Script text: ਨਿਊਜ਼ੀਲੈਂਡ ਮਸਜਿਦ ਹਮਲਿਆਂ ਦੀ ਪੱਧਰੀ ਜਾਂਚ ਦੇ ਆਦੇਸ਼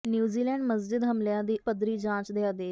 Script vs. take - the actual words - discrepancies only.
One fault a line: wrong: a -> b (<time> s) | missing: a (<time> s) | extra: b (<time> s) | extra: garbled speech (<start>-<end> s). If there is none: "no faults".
no faults